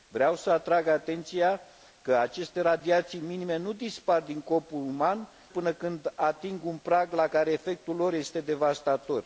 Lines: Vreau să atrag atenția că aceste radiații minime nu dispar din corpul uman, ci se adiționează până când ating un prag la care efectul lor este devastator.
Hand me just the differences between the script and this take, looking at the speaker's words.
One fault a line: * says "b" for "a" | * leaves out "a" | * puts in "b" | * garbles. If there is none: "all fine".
* leaves out "ci se adiționează"